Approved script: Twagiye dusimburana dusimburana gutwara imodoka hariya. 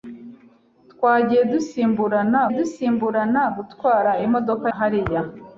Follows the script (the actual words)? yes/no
yes